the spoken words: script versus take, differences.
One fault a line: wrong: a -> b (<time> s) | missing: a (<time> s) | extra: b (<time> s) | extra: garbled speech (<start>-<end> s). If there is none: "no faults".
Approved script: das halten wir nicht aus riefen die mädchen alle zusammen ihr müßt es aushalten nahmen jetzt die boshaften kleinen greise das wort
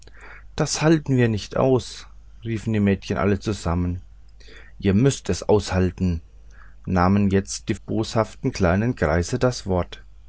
no faults